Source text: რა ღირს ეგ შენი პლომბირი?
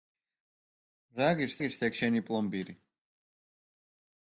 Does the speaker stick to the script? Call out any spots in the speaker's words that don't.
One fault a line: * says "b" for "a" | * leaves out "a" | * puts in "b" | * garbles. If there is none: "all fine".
* puts in "ღირს"